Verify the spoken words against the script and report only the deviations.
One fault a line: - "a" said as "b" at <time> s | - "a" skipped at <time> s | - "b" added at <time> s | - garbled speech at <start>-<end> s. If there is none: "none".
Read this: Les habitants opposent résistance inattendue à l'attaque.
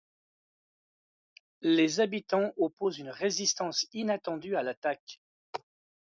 - "une" added at 3.0 s